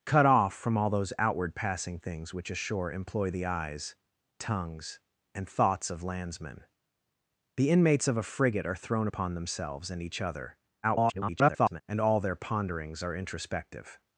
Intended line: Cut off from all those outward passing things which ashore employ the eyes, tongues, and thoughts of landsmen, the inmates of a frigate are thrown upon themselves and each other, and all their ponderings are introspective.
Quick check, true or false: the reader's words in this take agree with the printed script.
false